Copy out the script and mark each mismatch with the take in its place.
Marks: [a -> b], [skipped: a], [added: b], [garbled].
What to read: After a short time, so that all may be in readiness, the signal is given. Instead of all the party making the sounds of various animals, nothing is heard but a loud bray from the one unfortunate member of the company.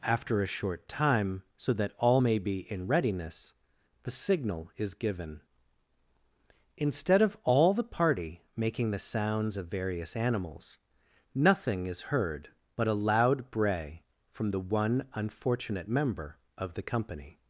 After a short time, so that all may be in readiness, the signal is given. Instead of all the party making the sounds of various animals, nothing is heard but a loud bray from the one unfortunate member of the company.